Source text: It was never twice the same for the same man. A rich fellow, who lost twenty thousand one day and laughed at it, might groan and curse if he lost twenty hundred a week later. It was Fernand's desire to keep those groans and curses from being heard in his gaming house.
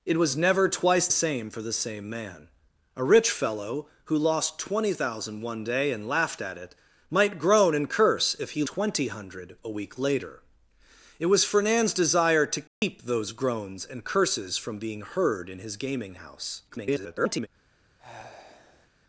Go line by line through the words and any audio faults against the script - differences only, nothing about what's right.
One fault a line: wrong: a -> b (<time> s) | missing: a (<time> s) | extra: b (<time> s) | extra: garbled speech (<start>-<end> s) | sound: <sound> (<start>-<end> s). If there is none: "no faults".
missing: the (1.1 s)
missing: lost (8.6 s)
sound: dropout (12.7-12.8 s)
extra: garbled speech (16.7-17.5 s)
sound: sigh (18.0-18.9 s)